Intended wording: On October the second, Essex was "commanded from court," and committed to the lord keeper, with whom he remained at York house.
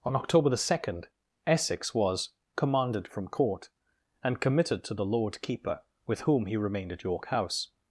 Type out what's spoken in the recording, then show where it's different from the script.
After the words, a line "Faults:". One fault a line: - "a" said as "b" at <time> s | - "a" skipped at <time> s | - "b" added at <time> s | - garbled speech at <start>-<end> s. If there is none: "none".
On October the second, Essex was "commanded from court," and committed to the lord keeper, with whom he remained at York house.
Faults:
none